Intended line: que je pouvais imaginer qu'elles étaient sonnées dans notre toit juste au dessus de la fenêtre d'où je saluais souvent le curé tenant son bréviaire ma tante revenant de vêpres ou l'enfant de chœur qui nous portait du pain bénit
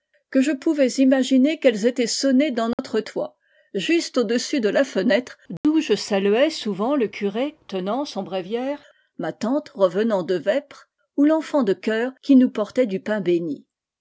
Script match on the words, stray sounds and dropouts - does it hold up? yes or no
no